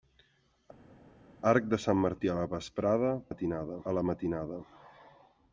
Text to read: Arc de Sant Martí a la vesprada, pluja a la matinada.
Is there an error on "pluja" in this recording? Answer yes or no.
yes